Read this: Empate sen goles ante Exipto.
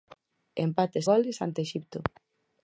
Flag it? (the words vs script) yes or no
yes